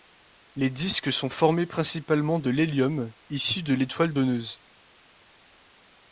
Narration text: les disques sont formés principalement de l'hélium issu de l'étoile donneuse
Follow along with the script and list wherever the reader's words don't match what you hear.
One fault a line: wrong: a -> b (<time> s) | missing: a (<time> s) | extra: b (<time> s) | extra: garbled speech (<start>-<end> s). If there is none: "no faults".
no faults